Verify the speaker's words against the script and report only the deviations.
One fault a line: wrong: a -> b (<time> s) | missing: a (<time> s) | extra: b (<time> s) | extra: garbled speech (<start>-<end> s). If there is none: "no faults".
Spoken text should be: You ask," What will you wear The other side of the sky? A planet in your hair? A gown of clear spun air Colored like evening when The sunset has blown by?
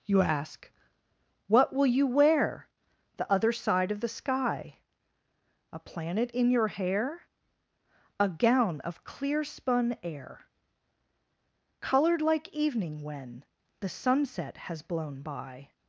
no faults